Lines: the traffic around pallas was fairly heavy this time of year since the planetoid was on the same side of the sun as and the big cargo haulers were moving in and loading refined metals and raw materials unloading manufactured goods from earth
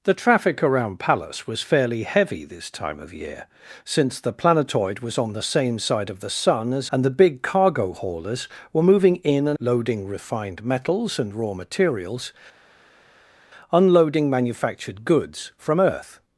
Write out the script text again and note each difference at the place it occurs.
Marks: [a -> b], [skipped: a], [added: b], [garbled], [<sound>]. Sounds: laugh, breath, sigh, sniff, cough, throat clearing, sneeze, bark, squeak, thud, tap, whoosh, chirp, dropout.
the traffic around pallas was fairly heavy this time of year since the planetoid was on the same side of the sun as and the big cargo haulers were moving in and loading refined metals and raw materials unloading manufactured goods from earth